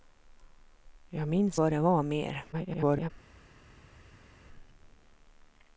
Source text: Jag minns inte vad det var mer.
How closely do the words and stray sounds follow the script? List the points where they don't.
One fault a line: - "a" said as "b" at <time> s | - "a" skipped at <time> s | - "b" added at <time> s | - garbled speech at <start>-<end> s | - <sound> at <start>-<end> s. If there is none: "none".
- "inte" skipped at 1.6 s
- garbled speech at 2.5-3.1 s